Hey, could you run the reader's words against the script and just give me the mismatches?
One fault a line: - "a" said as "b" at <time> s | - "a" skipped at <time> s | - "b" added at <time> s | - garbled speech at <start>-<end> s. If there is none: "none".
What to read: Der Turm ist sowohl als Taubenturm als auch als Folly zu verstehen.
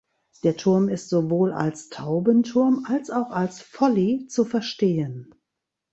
none